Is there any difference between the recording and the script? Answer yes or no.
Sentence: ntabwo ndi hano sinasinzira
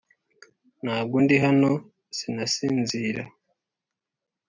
no